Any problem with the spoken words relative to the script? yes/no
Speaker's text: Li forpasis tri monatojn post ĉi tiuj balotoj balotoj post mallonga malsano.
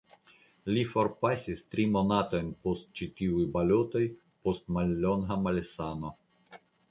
yes